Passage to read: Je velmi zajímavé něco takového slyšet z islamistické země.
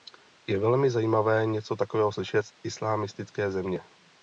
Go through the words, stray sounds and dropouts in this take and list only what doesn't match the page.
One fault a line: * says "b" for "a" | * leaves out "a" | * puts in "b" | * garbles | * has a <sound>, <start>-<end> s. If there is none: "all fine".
all fine